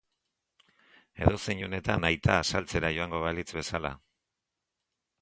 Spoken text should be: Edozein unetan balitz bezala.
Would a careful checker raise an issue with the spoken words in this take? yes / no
yes